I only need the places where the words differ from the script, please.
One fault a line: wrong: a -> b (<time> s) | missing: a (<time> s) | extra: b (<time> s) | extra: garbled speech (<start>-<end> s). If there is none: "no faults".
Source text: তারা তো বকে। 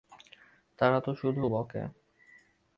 extra: শুধু (1.1 s)